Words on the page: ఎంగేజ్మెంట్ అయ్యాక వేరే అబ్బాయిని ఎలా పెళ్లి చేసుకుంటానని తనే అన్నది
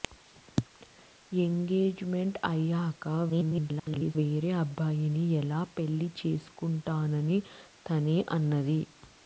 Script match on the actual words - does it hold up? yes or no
no